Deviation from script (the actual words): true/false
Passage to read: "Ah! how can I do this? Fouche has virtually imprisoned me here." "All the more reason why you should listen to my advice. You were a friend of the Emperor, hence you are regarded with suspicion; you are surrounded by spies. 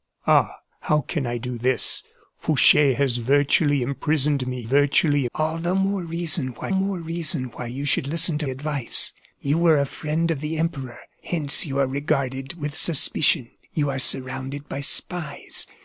true